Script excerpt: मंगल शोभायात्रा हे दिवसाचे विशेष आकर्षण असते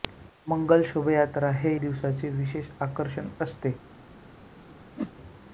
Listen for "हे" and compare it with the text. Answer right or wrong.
right